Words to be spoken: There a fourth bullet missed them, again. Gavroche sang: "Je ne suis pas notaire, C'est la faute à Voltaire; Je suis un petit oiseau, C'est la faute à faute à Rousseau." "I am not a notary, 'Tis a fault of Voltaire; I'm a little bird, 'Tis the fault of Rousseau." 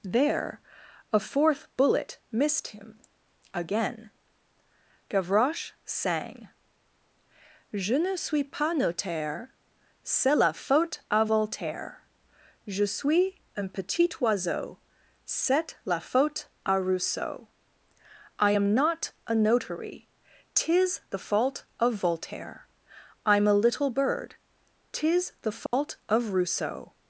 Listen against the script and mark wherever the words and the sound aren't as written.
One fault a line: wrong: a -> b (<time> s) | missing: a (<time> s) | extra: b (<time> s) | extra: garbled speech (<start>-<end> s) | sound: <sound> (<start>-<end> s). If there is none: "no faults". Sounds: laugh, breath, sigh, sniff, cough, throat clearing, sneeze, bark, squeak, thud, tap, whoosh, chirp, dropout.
wrong: them -> him (2.7 s)
missing: faute à (16.8 s)
wrong: a -> the (21.1 s)
sound: dropout (25.7-25.7 s)